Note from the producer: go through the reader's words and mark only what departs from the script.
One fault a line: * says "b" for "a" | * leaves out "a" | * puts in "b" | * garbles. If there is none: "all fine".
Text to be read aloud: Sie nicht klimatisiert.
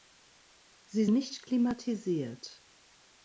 all fine